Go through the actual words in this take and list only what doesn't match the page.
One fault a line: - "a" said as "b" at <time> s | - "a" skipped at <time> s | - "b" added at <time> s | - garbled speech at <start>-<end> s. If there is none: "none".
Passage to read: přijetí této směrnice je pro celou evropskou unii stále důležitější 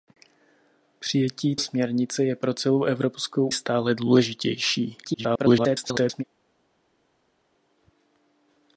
- "této" skipped at 1.6 s
- "unii" skipped at 3.5 s
- garbled speech at 5.0-6.2 s